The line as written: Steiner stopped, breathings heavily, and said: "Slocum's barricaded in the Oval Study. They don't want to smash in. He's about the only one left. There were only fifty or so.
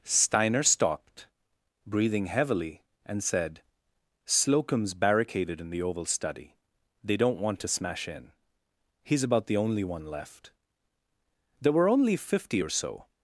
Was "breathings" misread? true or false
true